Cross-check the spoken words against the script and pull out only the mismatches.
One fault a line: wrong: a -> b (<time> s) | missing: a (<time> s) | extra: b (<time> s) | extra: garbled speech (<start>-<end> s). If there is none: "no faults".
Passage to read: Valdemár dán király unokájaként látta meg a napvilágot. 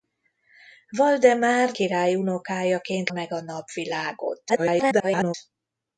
missing: dán (1.8 s)
missing: látta (3.1 s)
extra: garbled speech (4.5-5.3 s)